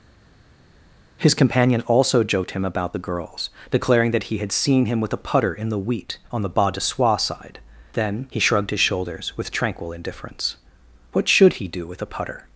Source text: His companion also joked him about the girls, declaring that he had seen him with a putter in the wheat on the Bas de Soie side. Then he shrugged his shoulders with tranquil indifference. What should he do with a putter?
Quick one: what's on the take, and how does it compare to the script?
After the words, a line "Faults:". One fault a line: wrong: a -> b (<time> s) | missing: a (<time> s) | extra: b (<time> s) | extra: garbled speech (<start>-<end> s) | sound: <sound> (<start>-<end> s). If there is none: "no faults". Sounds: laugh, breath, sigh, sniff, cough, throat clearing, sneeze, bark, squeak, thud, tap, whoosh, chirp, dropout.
His companion also joked him about the girls, declaring that he had seen him with a putter in the wheat on the Bas de Soie side. Then he shrugged his shoulders with tranquil indifference. What should he do with a putter?
Faults:
no faults